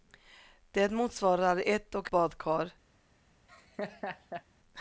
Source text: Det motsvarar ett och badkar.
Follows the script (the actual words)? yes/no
yes